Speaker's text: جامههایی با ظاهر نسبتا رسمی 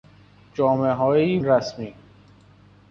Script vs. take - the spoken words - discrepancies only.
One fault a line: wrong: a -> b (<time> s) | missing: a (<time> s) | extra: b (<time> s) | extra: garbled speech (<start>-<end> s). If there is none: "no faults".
missing: با ظاهر نسبتا (1.4 s)